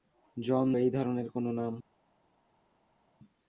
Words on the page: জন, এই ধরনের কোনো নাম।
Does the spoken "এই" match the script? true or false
true